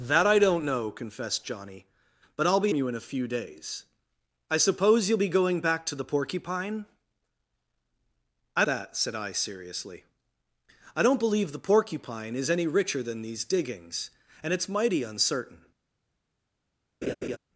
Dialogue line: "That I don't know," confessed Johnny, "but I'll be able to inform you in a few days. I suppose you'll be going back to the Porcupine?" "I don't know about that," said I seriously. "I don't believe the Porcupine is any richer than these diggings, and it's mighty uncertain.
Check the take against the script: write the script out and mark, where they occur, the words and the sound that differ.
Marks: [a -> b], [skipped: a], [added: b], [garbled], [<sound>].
"That I don't know," confessed Johnny, "but I'll be [skipped: able to inform] you in a few days. I suppose you'll be going back to the Porcupine?" "I [skipped: don't know about] that," said I seriously. "I don't believe the Porcupine is any richer than these diggings, and it's mighty uncertain. [laugh]